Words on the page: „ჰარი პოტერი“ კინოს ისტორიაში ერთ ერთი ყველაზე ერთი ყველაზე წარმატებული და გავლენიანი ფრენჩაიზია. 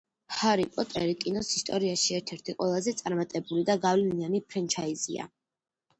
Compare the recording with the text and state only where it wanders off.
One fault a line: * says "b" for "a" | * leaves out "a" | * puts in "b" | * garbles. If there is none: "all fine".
* leaves out "ერთი ყველაზე"